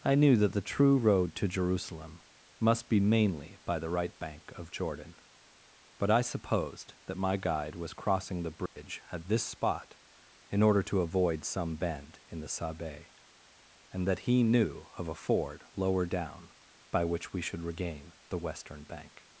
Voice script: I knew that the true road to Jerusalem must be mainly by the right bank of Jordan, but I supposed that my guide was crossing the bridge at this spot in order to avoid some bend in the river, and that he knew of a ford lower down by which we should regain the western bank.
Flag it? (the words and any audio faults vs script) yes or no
yes